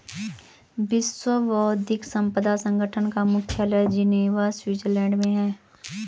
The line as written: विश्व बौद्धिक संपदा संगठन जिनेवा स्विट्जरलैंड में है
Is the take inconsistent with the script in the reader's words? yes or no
yes